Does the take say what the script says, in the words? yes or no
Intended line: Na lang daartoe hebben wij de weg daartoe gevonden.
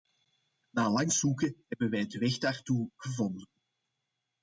no